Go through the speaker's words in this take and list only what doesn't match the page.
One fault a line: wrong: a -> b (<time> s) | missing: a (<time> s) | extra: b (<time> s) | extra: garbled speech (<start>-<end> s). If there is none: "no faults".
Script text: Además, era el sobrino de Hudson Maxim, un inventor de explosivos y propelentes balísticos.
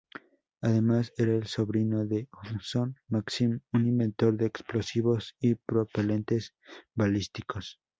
no faults